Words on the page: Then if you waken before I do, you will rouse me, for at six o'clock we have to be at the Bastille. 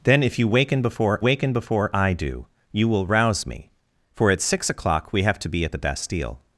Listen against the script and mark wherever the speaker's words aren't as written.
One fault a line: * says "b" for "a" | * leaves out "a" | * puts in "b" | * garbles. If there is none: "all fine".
* puts in "waken before"